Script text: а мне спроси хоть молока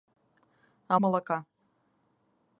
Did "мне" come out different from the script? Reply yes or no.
yes